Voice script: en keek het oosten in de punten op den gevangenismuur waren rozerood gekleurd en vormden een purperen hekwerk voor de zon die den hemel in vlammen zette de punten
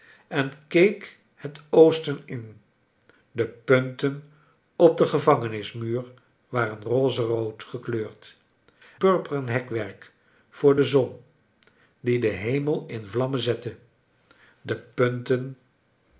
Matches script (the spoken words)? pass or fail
fail